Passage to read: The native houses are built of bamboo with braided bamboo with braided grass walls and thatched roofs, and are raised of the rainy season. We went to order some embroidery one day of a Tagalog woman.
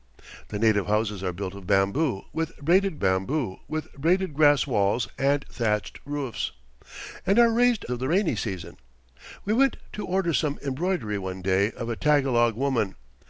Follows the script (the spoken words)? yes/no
yes